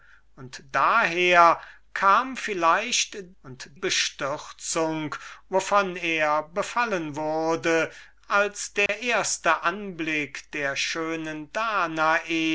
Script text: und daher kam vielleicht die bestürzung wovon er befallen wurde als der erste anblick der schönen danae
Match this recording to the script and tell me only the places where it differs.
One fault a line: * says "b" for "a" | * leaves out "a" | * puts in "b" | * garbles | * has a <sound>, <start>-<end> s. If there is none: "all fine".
* says "und" for "die"
* has a dropout, 8.9-8.9 s